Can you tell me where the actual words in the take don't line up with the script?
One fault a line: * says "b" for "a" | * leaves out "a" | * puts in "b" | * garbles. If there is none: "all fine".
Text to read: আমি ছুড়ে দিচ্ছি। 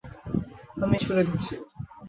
all fine